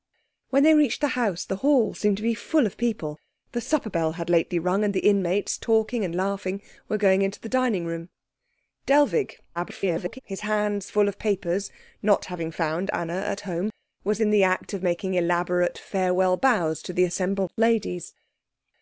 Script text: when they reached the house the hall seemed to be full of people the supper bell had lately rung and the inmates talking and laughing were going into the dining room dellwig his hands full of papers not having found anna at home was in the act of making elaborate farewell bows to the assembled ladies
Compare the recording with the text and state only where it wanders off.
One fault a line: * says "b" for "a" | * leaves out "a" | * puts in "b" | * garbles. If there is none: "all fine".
* garbles